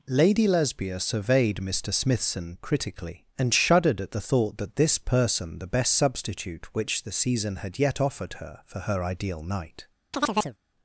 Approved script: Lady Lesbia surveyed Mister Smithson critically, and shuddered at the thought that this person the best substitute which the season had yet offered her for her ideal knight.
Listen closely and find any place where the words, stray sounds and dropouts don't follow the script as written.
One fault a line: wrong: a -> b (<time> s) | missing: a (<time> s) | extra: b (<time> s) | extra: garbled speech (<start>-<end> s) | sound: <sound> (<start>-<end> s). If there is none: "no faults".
sound: chirp (10.1-10.6 s)